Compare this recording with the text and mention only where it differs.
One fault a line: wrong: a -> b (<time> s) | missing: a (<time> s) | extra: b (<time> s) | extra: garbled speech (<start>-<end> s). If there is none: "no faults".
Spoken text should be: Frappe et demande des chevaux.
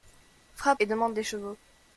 no faults